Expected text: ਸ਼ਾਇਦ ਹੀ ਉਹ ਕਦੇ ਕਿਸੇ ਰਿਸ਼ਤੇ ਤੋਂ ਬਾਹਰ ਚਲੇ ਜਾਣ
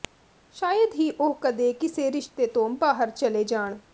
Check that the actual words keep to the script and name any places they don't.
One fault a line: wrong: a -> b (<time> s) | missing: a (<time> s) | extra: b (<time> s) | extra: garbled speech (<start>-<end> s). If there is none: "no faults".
no faults